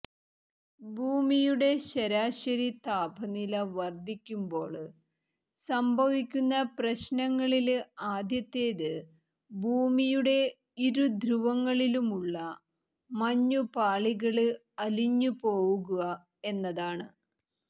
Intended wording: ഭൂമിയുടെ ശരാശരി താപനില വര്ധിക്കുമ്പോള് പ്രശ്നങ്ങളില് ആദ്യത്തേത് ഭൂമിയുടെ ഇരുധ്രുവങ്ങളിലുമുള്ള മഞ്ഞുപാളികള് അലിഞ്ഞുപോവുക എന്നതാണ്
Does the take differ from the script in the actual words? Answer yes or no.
yes